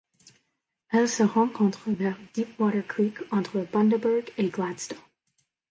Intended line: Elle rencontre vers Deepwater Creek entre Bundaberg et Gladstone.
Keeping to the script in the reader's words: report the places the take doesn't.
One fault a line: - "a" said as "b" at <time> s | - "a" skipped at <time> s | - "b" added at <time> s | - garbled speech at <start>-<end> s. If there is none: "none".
- "se" added at 1.1 s